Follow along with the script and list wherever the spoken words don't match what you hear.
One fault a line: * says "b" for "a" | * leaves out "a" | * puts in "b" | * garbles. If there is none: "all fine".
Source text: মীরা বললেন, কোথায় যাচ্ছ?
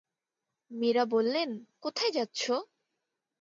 all fine